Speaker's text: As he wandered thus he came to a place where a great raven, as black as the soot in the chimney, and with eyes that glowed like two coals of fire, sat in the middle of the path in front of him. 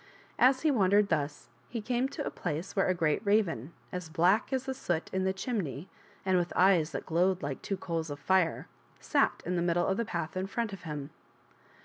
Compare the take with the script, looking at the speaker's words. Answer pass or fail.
pass